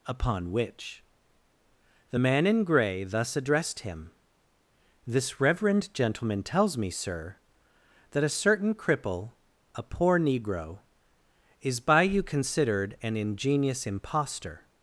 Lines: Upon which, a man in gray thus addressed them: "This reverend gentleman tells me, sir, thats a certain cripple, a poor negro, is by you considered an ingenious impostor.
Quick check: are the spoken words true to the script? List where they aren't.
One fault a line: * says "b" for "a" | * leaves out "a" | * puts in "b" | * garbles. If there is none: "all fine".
* says "the" for "a"
* says "him" for "them"
* says "that" for "thats"